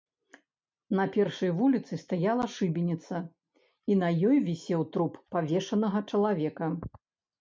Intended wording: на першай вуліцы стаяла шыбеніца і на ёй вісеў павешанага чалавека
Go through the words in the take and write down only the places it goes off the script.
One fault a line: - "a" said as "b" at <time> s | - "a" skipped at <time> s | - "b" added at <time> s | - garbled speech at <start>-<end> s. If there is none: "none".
- "труп" added at 5.0 s